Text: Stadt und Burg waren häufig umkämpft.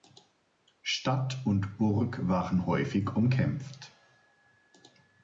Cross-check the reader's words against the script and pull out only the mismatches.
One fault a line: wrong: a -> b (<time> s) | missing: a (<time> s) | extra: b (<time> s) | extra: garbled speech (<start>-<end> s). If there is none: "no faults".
no faults